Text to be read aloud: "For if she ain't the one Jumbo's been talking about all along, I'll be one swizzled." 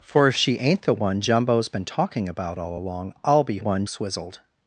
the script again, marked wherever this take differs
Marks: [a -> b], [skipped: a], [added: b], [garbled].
"For if she ain't the one Jumbo's been talking about all along, I'll be one swizzled."